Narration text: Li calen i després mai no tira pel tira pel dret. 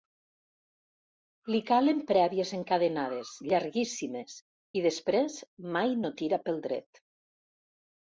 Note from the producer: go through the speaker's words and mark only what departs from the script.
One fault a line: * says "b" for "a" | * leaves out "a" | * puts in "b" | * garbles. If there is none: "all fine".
* puts in "prèvies encadenades llarguíssimes"
* leaves out "tira pel"